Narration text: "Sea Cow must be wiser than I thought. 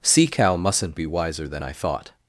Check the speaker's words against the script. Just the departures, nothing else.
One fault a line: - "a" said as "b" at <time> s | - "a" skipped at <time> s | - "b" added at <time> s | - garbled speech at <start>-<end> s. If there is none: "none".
- "must" said as "mustn't" at 0.6 s